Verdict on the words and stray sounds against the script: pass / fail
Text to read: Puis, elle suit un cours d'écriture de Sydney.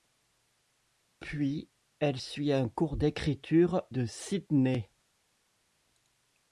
pass